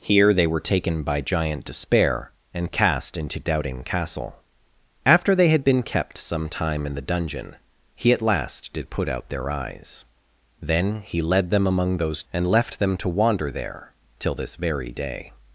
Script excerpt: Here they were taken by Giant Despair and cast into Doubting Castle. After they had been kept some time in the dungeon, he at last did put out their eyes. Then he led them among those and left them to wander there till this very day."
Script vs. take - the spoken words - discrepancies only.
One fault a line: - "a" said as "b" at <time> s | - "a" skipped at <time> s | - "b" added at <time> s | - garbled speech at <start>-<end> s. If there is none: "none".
none